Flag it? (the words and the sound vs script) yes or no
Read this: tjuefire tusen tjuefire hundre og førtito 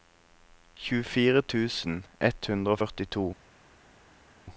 yes